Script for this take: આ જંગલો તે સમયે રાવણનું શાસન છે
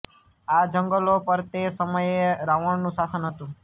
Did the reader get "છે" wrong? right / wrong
wrong